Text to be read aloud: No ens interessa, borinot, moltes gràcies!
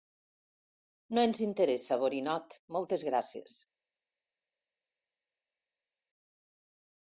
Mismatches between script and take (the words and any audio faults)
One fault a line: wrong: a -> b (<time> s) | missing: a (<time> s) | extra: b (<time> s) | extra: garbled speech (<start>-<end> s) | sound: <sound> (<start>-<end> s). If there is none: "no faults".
no faults